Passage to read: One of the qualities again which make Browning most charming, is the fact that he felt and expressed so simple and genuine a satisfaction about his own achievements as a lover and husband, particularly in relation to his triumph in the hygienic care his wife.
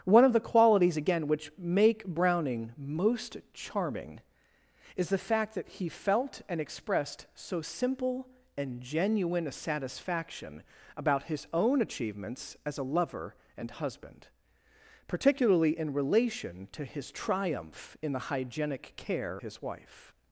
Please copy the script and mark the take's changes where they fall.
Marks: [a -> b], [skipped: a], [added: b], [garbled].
One of the qualities again which make Browning most charming, is the fact that he felt and expressed so simple and genuine a satisfaction about his own achievements as a lover and husband, particularly in relation to his triumph in the hygienic care his wife.